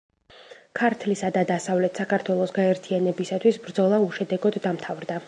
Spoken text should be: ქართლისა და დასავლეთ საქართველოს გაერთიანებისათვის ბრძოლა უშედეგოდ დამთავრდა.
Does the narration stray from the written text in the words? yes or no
no